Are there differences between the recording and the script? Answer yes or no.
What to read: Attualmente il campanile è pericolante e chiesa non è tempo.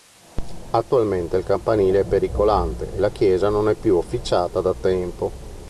yes